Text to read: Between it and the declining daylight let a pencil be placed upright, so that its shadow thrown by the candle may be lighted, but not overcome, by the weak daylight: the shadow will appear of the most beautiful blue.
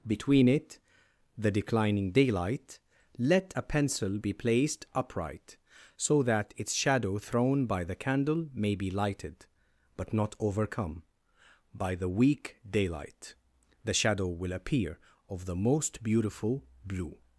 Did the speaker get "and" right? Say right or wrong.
wrong